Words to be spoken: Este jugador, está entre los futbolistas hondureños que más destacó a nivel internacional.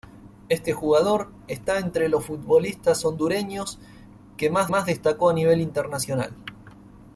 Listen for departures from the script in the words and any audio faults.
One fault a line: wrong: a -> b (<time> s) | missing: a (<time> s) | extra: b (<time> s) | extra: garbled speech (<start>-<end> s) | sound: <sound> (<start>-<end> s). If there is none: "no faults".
extra: más (4.7 s)